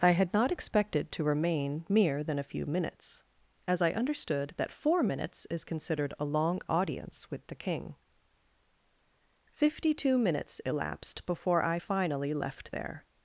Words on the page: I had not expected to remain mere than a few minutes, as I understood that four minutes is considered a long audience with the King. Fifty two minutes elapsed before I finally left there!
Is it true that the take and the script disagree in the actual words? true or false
false